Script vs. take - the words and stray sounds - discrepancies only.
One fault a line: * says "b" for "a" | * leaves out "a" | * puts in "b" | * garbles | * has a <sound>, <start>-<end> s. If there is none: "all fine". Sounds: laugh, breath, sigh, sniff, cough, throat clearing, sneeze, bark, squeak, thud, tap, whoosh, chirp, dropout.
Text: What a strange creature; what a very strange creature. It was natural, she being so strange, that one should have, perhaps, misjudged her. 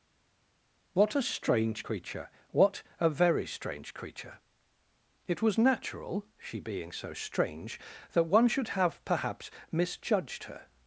all fine